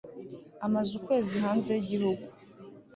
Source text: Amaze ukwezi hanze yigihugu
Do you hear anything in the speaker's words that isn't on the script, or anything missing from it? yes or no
no